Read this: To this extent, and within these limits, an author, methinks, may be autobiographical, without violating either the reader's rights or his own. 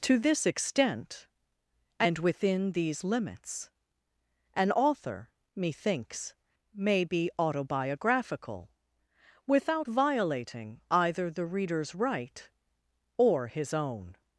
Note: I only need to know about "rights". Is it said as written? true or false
false